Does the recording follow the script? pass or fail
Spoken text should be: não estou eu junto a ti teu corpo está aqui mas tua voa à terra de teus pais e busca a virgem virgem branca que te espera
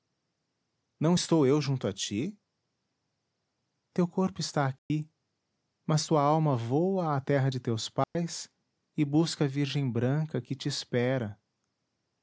fail